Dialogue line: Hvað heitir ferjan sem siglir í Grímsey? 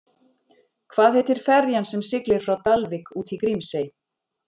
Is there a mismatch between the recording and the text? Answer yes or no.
yes